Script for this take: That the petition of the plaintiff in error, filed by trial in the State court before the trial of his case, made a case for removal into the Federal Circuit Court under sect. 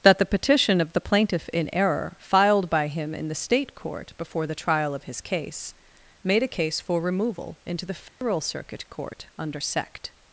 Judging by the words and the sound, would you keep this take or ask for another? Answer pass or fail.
fail